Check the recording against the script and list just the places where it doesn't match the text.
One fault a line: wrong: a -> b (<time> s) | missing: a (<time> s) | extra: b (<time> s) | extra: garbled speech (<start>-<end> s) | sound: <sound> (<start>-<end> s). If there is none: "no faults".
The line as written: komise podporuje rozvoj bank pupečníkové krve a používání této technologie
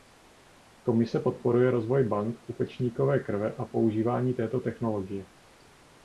no faults